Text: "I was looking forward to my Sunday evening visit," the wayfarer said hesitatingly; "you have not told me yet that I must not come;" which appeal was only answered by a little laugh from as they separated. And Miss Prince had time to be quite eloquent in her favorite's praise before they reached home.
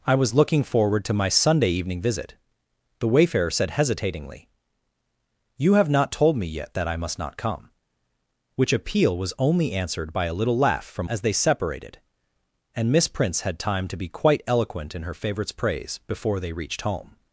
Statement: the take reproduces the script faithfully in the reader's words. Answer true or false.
true